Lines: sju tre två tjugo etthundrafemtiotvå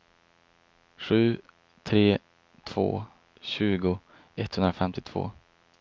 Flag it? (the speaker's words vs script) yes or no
no